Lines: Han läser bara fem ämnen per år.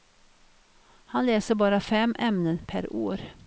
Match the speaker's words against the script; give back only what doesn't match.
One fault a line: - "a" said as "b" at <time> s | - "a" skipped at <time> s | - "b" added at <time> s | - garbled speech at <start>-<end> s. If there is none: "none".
none